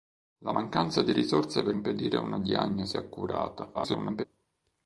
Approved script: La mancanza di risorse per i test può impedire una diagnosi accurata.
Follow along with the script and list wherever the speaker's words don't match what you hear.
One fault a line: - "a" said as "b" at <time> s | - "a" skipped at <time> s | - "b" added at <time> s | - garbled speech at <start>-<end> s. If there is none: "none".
- "i test può" skipped at 1.7 s
- garbled speech at 3.7-4.2 s